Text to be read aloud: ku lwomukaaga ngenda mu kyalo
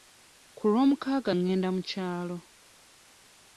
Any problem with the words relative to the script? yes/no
no